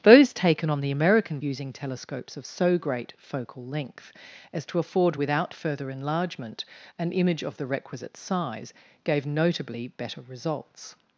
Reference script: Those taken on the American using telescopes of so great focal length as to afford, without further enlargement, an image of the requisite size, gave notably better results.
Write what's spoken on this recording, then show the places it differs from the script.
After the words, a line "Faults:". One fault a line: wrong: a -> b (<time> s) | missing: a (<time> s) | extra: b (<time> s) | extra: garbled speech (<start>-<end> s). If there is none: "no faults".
Those taken on the American using telescopes of so great focal length as to afford, without further enlargement, an image of the requisite size, gave notably better results.
Faults:
no faults